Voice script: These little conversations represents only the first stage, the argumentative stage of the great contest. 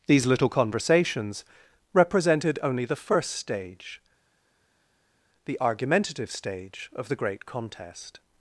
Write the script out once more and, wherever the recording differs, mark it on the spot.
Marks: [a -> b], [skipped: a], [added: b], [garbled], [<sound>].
These little conversations [represents -> represented] only the first stage, the argumentative stage of the great contest.